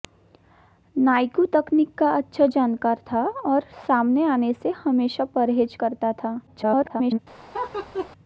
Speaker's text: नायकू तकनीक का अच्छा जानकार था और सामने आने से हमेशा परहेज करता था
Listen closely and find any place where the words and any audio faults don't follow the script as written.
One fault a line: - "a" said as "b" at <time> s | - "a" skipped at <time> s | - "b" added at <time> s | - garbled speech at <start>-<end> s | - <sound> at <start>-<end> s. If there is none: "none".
- garbled speech at 6.5-7.2 s
- laugh at 7.5-8.1 s